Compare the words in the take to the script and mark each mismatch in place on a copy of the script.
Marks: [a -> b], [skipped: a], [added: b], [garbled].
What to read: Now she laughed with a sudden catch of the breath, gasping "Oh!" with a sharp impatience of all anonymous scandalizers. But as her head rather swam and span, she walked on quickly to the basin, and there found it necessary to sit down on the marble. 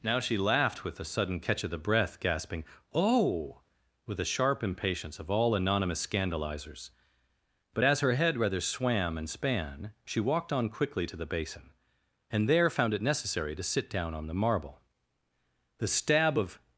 Now she laughed with a sudden catch of the breath, gasping "Oh!" with a sharp impatience of all anonymous scandalizers. But as her head rather swam and span, she walked on quickly to the basin, and there found it necessary to sit down on the marble. [added: The stab of]